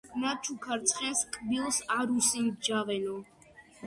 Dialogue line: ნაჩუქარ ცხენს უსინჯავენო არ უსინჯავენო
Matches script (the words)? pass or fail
fail